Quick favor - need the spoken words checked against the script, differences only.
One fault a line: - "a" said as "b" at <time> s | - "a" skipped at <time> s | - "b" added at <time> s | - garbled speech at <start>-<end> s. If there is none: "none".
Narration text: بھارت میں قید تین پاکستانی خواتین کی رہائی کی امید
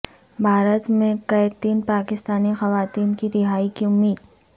none